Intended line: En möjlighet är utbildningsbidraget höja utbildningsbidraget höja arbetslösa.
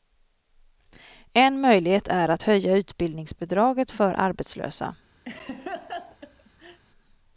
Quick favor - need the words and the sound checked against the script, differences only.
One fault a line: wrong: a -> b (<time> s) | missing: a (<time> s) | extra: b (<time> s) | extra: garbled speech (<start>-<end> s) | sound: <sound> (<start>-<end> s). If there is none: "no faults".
wrong: utbildningsbidraget -> att (2.3 s)
wrong: höja -> för (3.9 s)
sound: laugh (5.3-6.8 s)